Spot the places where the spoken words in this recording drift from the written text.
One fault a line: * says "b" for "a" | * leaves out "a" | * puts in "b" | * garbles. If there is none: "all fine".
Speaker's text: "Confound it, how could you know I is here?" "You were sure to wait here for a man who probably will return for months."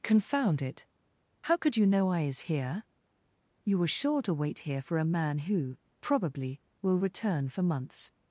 all fine